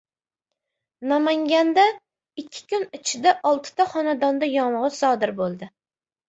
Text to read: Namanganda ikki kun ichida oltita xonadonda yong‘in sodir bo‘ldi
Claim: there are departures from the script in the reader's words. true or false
false